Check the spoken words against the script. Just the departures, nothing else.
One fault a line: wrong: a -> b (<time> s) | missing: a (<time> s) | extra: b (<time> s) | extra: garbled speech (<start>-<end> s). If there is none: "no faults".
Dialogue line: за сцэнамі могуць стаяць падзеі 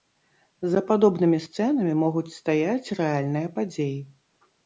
extra: падобнымі (0.9 s)
extra: рэальныя (3.0 s)